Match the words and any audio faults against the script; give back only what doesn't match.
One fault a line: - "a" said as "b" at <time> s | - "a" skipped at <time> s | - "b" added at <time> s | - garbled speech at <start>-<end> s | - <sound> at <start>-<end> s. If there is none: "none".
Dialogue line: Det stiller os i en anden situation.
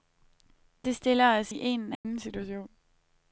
- dropout at 1.9-2.0 s